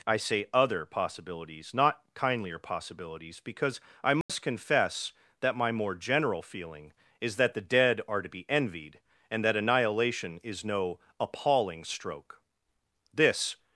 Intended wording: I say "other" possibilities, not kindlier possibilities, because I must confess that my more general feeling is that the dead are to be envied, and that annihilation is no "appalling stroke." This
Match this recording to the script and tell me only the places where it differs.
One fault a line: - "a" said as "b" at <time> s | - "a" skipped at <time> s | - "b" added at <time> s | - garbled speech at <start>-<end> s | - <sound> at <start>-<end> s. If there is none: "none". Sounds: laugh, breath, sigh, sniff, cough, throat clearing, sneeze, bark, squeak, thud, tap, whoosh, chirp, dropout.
- dropout at 4.2-4.3 s